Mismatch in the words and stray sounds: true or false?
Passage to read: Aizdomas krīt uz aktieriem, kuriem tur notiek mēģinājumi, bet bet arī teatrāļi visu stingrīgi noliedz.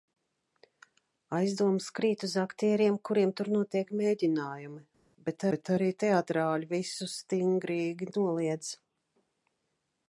false